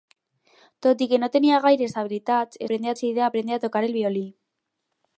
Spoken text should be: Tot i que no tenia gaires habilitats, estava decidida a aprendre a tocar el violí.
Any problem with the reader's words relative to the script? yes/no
yes